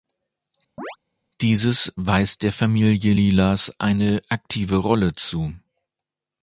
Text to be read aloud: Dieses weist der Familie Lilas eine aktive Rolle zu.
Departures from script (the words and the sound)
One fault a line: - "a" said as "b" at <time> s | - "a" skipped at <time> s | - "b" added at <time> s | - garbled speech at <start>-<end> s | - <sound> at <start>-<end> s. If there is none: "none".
- chirp at 0.8-1.0 s